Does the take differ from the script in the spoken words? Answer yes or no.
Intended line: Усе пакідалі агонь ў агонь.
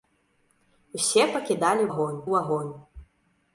no